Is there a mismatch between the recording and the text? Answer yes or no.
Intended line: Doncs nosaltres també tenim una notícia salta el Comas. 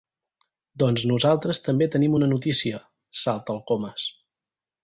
no